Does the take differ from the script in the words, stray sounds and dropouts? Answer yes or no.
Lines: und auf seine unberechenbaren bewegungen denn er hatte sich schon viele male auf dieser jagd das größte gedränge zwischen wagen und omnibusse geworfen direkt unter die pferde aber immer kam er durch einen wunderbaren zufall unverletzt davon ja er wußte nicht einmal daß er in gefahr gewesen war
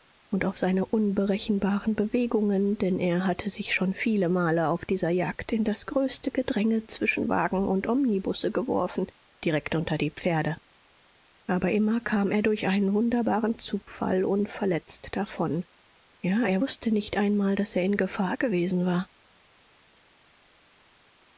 yes